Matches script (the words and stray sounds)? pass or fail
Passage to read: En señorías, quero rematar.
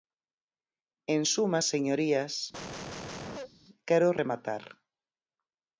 fail